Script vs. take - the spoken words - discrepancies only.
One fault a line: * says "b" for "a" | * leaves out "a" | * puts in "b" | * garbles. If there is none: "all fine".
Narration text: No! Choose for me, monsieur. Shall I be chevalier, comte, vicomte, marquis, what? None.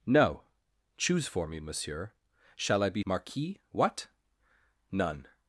* leaves out "chevalier comte vicomte"